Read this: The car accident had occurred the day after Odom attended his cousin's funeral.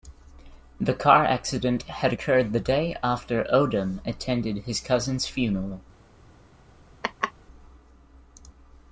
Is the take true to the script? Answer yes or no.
yes